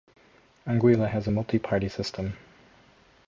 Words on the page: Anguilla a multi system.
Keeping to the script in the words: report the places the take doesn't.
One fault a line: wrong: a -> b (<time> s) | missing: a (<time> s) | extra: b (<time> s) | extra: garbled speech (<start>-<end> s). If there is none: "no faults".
extra: has (1.1 s)
extra: party (1.6 s)